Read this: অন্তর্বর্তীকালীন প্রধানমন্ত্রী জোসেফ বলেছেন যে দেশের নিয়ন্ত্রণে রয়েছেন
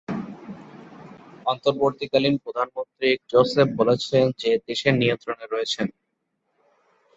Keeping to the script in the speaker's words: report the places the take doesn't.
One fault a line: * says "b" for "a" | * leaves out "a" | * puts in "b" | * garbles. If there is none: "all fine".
all fine